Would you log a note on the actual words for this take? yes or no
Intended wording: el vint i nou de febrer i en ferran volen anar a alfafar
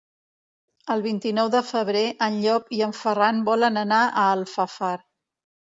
yes